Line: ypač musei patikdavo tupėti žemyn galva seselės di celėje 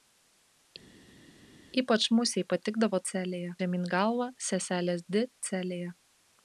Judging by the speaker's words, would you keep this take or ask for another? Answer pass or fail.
fail